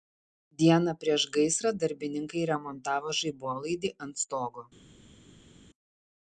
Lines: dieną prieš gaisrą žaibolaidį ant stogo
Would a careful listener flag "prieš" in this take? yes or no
no